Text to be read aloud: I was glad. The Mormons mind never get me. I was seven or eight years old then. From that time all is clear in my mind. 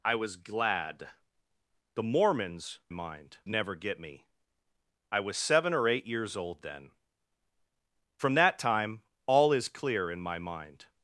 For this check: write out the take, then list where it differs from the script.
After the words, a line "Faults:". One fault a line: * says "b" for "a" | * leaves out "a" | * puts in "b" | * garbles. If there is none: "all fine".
I was glad. The Mormons mind never get me. I was seven or eight years old then. From that time all is clear in my mind.
Faults:
all fine